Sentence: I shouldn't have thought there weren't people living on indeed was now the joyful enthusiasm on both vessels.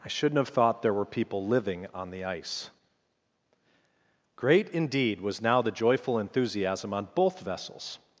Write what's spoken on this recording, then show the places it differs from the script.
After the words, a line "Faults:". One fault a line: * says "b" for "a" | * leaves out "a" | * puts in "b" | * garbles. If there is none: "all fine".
I shouldn't have thought there were people living on the ice." Great indeed was now the joyful enthusiasm on both vessels.
Faults:
* says "were" for "weren't"
* puts in "the ice Great"